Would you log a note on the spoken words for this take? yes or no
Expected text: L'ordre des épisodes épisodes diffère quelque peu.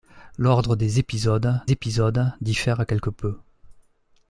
no